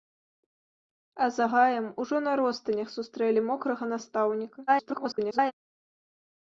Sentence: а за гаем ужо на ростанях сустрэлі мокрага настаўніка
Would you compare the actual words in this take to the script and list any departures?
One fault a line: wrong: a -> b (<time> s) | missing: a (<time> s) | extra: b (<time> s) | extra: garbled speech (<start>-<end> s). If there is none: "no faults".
extra: garbled speech (4.7-5.5 s)